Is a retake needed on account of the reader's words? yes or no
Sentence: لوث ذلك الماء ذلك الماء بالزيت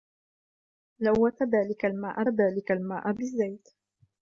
no